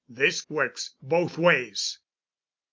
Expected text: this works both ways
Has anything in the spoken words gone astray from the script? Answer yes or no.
no